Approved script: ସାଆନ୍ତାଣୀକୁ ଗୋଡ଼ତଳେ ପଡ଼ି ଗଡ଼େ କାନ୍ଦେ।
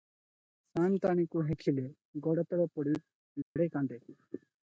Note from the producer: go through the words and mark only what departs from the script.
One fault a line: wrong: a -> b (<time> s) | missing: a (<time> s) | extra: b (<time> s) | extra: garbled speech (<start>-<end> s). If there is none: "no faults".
extra: ହେଖିଲେ (1.5 s)